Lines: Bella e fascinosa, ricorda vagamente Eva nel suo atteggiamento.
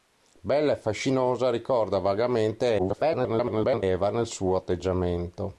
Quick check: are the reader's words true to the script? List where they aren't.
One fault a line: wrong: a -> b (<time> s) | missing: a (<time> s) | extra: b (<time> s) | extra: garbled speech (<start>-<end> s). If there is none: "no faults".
extra: garbled speech (2.8-3.8 s)